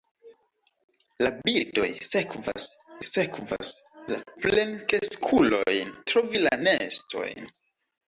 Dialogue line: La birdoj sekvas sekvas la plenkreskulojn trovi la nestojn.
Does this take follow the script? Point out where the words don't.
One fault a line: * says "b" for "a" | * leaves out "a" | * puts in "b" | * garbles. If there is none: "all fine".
all fine